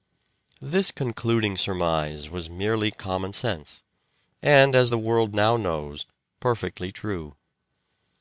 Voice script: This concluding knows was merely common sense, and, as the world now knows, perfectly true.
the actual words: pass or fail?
fail